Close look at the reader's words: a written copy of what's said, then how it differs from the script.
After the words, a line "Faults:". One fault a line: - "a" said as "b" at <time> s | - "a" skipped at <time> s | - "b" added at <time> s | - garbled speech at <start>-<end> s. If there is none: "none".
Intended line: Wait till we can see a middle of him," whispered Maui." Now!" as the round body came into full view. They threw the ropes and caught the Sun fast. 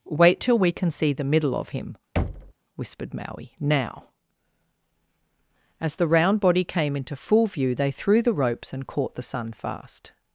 Wait till we can see the middle of him," whispered Maui." Now!" as the round body came into full view. They threw the ropes and caught the Sun fast.
Faults:
- "a" said as "the" at 1.1 s